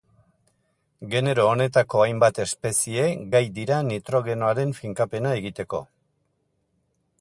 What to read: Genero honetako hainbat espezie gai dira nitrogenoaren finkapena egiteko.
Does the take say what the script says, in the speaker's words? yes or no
yes